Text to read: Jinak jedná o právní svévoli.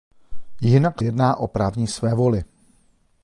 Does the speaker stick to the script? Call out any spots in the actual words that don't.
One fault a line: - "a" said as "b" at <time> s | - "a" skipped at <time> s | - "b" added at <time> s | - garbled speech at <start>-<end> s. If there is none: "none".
none